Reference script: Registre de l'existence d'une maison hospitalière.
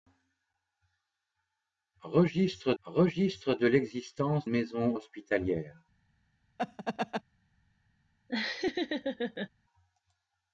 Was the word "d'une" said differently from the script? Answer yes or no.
yes